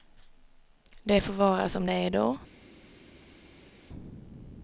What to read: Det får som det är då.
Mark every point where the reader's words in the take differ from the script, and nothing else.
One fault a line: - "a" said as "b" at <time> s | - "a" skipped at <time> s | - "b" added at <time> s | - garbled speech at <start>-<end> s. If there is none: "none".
- "vara" added at 1.3 s